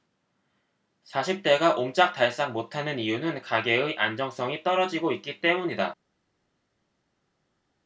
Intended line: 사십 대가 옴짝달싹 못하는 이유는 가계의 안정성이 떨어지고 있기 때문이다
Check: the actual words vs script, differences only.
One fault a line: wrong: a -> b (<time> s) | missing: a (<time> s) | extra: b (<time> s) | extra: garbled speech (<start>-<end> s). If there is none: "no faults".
no faults